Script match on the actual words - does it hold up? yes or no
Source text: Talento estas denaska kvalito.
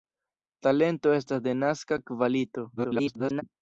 no